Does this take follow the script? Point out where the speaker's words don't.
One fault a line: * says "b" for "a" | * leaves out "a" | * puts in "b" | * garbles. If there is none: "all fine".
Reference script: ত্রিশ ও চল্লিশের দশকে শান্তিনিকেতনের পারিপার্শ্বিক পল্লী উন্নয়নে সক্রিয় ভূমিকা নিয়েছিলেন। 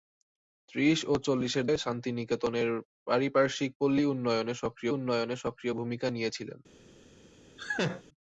* leaves out "দশকে"
* puts in "উন্নয়নে সক্রিয়"